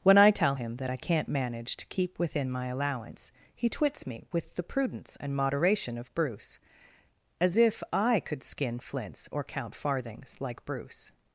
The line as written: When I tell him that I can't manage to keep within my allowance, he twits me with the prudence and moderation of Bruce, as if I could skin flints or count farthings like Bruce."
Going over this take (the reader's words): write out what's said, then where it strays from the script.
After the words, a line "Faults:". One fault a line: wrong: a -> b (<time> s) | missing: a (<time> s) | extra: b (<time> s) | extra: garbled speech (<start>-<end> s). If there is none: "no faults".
When I tell him that I can't manage to keep within my allowance, he twits me with the prudence and moderation of Bruce, as if I could skin flints or count farthings like Bruce."
Faults:
no faults